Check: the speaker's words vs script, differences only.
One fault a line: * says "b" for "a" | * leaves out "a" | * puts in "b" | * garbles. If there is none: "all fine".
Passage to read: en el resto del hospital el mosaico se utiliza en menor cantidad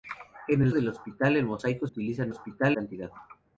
* leaves out "resto"
* leaves out "se"
* says "hospital" for "menor"